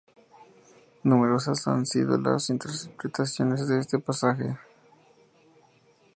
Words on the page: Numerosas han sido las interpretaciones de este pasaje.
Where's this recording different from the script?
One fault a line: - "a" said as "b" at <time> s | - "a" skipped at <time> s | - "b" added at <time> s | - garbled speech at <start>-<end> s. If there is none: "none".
none